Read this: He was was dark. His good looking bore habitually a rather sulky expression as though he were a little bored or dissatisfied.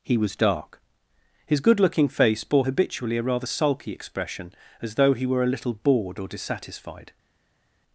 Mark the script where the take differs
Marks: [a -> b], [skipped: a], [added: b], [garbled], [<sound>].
He was [skipped: was] dark. His good looking [added: face] bore habitually a rather sulky expression as though he were a little bored or dissatisfied.